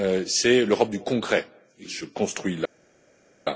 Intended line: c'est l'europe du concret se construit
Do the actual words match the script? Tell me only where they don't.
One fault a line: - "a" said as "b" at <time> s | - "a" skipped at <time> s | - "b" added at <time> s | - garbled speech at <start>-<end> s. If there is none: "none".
none